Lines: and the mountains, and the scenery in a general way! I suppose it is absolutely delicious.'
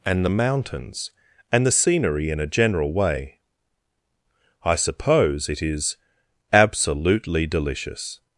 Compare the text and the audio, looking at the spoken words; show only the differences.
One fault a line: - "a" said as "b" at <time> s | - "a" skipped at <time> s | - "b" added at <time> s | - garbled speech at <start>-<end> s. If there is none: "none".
none